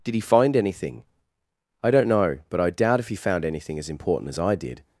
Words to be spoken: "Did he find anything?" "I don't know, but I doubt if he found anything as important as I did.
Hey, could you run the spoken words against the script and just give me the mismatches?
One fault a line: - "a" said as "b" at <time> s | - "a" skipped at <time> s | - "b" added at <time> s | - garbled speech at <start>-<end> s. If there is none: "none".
none